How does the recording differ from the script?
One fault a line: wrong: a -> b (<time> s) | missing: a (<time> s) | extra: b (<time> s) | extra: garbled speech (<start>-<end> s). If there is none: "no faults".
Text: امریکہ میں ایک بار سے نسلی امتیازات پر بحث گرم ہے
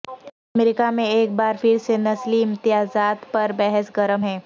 extra: پھر (1.6 s)